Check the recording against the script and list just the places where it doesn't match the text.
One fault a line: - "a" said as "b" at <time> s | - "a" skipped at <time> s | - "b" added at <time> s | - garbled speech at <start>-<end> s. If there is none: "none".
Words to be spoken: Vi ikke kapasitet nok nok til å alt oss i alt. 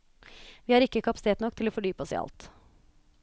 - "har" added at 0.7 s
- "nok" skipped at 1.6 s
- "alt" said as "fordype" at 1.8 s